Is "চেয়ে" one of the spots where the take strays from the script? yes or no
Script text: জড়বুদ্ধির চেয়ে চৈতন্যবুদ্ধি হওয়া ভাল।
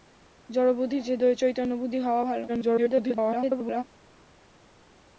no